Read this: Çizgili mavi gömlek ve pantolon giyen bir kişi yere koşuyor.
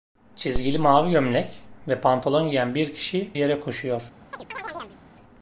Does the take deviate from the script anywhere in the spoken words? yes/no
no